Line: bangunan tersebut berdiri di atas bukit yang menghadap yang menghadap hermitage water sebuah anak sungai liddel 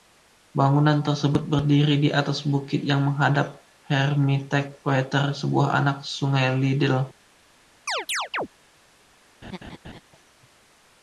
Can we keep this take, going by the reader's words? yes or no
no